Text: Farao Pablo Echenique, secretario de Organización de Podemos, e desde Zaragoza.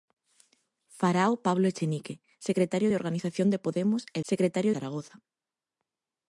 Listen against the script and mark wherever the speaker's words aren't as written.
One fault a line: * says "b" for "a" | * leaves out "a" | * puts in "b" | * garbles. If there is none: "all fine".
* says "secretario" for "desde"